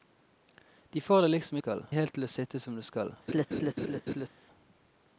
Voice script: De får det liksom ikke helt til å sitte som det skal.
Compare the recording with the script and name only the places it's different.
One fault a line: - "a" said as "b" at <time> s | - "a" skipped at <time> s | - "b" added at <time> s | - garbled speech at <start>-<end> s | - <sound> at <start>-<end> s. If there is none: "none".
- "ikke" said as "skal" at 1.6 s
- laugh at 3.3-4.3 s